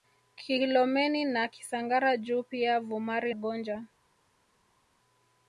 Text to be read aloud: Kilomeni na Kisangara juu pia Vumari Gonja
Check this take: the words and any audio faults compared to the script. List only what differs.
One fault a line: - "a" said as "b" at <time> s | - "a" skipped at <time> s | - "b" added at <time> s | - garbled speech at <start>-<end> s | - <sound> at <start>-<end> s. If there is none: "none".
none